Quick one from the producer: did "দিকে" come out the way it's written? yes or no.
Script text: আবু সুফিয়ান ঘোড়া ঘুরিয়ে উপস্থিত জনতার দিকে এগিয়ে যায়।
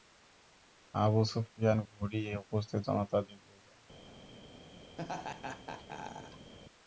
no